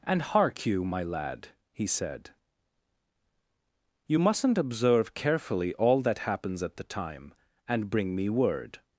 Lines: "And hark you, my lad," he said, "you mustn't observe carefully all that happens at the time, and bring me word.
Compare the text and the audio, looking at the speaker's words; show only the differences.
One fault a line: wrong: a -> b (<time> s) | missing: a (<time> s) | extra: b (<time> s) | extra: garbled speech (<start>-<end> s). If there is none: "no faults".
no faults